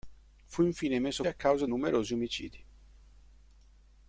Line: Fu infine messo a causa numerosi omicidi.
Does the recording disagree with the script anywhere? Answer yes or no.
no